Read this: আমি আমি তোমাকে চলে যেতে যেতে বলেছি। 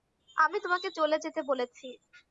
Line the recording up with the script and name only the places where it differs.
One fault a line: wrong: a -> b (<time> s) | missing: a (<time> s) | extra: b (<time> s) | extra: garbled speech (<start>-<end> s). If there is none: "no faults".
missing: আমি (0.6 s)
missing: যেতে (1.4 s)